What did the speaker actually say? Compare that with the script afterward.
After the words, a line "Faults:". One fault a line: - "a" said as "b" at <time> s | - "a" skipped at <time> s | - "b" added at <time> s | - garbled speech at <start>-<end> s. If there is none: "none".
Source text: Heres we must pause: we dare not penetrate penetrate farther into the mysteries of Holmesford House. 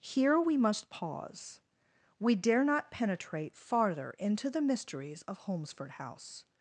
Here we must pause: we dare not penetrate farther into the mysteries of Holmesford House.
Faults:
- "Heres" said as "Here" at 0.0 s
- "penetrate" skipped at 3.6 s